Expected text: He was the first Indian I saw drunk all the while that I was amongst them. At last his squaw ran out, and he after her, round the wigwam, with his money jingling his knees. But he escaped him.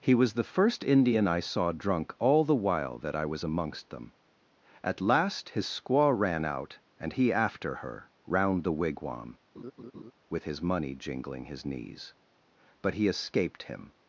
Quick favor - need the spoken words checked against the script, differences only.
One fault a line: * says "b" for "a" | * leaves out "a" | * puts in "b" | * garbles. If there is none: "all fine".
all fine